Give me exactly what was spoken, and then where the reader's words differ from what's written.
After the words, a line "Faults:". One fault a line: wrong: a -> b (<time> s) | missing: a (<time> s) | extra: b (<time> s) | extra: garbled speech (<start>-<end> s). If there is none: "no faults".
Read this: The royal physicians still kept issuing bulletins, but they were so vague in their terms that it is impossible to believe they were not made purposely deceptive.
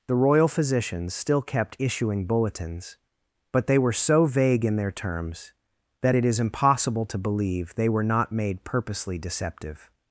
The royal physicians still kept issuing bulletins, but they were so vague in their terms that it is impossible to believe they were not made purposely deceptive.
Faults:
no faults